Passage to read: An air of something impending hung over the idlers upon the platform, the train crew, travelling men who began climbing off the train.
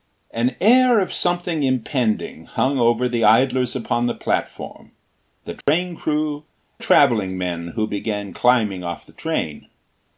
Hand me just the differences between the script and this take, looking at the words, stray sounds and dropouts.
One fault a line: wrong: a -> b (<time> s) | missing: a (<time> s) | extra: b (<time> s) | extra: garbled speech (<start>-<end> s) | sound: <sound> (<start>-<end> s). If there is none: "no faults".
sound: dropout (5.6-5.7 s)